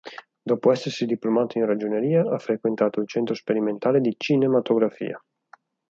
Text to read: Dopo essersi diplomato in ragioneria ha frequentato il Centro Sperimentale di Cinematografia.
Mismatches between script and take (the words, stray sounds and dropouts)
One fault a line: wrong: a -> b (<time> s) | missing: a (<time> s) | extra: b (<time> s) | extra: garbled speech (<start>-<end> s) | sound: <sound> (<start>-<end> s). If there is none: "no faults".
no faults